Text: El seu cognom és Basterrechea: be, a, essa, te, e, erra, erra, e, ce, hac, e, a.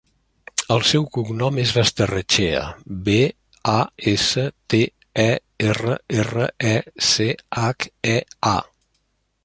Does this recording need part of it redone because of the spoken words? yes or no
no